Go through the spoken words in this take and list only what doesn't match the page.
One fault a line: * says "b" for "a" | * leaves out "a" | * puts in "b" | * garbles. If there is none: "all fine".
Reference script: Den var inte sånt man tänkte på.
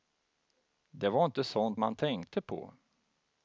* says "Det" for "Den"